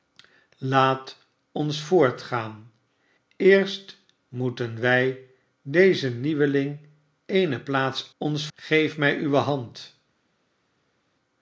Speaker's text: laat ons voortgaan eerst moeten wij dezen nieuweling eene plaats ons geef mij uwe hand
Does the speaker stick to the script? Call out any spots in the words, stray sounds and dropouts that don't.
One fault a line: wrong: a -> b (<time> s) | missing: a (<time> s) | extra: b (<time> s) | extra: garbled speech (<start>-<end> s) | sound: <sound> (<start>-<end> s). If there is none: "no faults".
no faults